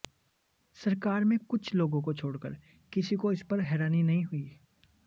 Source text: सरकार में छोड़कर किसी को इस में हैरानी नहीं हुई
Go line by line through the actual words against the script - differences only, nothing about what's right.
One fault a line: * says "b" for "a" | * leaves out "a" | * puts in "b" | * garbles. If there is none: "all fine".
* puts in "कुछ लोगों को"
* says "पर" for "में"